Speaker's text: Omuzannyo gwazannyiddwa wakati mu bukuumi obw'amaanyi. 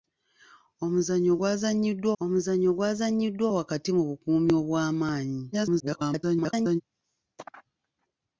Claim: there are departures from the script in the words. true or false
true